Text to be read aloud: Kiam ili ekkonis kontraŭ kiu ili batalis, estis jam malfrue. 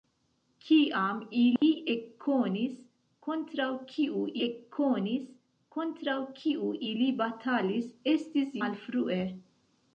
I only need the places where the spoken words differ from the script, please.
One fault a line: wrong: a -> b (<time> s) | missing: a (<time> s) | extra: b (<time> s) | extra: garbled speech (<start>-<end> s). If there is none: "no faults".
extra: ekkonis kontraŭ kiu (4.5 s)
missing: jam (8.6 s)